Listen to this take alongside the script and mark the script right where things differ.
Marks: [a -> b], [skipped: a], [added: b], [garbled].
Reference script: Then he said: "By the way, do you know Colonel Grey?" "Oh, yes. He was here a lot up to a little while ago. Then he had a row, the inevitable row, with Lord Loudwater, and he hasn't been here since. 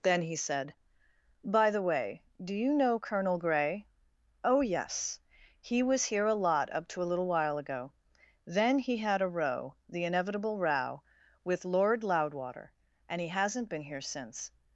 Then he said: "By the way, do you know Colonel Grey?" "Oh, yes. He was here a lot up to a little while ago. Then he had a row, the inevitable row, with Lord Loudwater, and he hasn't been here since.